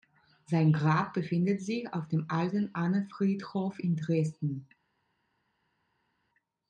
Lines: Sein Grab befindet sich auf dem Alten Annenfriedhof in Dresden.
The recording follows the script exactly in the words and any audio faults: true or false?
true